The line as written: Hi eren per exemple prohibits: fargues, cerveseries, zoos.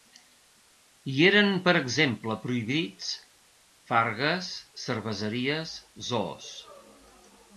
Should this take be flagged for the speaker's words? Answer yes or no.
no